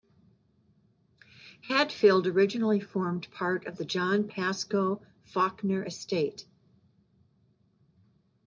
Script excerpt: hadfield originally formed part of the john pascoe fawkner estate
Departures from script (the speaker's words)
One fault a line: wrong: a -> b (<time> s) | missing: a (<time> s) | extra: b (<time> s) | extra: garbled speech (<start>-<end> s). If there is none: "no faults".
no faults